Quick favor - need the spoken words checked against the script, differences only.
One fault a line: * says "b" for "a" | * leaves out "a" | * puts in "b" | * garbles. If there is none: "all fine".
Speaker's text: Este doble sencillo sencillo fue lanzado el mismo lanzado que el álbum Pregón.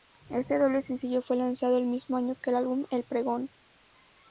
* leaves out "sencillo"
* says "año" for "lanzado"
* puts in "El"